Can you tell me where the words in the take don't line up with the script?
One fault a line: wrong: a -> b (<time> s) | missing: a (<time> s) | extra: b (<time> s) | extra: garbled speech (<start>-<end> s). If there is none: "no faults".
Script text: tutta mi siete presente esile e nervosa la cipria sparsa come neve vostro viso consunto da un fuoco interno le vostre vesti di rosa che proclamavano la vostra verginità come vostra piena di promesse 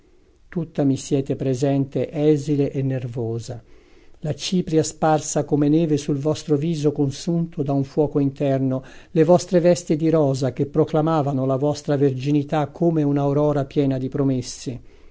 extra: sul (6.0 s)
wrong: vostra -> un'aurora (13.0 s)